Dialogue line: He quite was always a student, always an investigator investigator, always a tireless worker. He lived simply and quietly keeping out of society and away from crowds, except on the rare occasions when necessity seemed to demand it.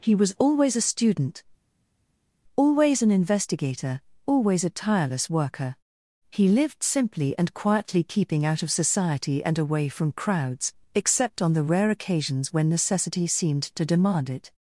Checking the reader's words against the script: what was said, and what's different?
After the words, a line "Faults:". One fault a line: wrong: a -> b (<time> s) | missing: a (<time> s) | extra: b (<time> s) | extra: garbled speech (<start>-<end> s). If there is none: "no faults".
He was always a student, always an investigator, always a tireless worker. He lived simply and quietly keeping out of society and away from crowds, except on the rare occasions when necessity seemed to demand it.
Faults:
missing: quite (0.1 s)
missing: investigator (4.0 s)